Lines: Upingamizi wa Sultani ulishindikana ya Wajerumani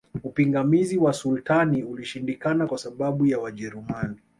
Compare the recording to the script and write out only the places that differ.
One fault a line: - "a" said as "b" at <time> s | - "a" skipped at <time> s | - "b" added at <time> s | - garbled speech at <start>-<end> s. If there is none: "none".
- "kwa sababu" added at 2.7 s